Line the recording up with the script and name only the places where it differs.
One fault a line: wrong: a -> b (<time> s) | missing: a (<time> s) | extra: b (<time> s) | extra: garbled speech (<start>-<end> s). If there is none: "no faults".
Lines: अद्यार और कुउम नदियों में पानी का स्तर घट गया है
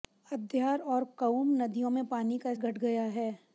missing: स्तर (2.5 s)